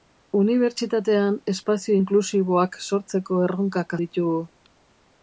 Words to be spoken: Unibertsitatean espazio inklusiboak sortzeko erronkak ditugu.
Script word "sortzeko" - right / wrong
right